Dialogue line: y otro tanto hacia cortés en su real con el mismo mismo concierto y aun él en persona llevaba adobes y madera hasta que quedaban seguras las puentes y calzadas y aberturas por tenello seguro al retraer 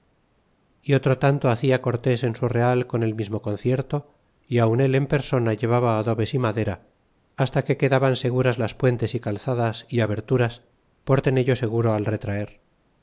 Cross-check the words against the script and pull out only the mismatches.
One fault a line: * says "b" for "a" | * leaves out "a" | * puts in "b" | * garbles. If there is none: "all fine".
* leaves out "mismo"